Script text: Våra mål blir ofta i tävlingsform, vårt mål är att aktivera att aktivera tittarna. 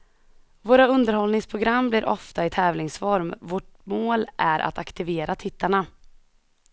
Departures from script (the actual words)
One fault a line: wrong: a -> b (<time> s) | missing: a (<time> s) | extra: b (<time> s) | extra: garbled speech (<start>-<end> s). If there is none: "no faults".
wrong: mål -> underhållningsprogram (0.9 s)
missing: att aktivera (5.3 s)